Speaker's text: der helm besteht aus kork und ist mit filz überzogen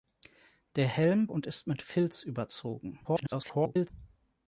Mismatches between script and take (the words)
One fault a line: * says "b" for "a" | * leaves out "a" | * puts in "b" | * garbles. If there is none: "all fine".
* leaves out "besteht aus kork"
* garbles